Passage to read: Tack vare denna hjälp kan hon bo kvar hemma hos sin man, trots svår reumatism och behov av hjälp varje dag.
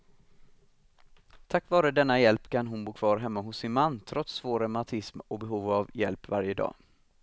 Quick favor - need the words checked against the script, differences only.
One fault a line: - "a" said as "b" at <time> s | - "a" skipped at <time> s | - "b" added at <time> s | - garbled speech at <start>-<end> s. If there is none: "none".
none